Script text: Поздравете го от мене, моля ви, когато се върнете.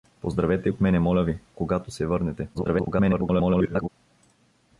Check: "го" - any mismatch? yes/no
yes